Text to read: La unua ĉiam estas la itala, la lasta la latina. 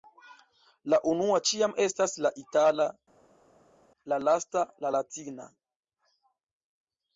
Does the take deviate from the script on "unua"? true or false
false